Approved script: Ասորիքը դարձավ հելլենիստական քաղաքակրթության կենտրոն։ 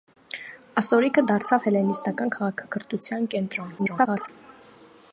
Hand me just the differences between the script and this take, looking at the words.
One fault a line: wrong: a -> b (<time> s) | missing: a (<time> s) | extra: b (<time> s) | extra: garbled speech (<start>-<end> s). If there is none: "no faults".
extra: garbled speech (3.8-4.3 s)